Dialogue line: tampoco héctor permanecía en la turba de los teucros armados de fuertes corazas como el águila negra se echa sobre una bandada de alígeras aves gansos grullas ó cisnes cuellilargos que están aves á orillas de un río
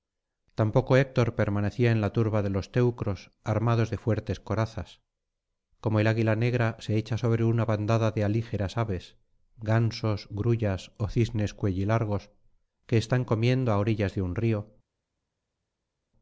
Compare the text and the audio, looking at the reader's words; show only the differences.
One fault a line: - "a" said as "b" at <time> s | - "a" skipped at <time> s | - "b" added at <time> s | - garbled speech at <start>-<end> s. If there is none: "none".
- "aves" said as "comiendo" at 13.2 s